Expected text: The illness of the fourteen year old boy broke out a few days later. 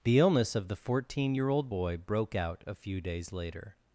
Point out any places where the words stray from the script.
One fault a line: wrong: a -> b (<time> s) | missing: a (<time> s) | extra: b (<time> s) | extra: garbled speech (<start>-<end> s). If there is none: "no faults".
no faults